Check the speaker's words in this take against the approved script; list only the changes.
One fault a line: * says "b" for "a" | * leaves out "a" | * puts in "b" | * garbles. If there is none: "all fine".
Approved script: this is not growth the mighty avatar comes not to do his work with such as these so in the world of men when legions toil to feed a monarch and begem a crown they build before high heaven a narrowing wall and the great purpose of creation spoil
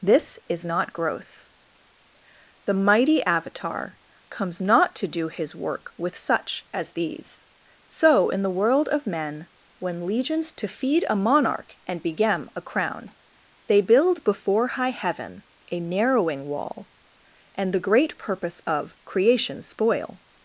* leaves out "toil"